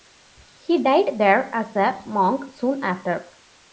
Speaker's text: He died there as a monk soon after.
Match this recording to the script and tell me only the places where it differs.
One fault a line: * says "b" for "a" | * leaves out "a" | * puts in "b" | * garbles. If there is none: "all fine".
all fine